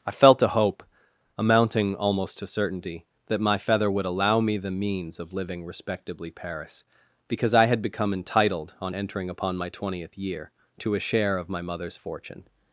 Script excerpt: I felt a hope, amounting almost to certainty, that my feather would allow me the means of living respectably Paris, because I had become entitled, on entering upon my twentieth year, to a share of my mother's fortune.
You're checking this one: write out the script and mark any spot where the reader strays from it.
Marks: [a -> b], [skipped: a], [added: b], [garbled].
I felt a hope, amounting almost to certainty, that my feather would allow me the means of living respectably Paris, because I had become entitled, on entering upon my twentieth year, to a share of my mother's fortune.